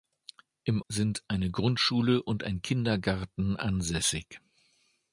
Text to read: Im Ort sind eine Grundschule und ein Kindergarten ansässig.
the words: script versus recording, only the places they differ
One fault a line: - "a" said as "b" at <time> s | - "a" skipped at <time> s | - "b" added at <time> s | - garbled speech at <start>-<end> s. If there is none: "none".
- "Ort" skipped at 0.8 s